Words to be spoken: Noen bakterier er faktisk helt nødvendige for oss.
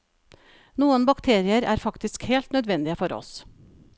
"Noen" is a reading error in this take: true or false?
false